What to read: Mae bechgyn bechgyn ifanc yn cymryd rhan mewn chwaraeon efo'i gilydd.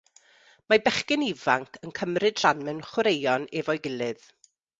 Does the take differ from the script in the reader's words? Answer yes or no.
yes